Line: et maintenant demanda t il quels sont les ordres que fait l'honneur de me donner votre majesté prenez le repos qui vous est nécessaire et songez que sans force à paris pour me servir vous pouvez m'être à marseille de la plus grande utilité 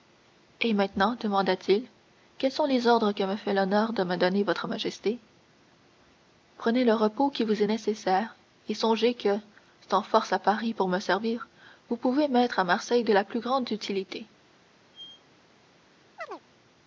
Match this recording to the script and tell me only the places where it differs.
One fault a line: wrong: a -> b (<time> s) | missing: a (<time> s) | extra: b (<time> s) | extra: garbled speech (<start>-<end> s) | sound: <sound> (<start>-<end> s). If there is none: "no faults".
extra: me (3.2 s)
sound: squeak (14.9-15.2 s)
sound: chirp (16.2-16.4 s)